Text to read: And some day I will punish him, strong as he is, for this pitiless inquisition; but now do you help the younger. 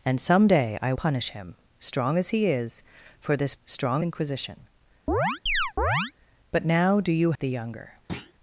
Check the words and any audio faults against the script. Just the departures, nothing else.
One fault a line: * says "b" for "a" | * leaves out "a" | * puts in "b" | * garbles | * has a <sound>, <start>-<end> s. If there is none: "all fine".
* leaves out "will"
* says "strong" for "pitiless"
* has a chirp, 5.1-6.1 s
* leaves out "help"
* has a thud, 8.1-8.3 s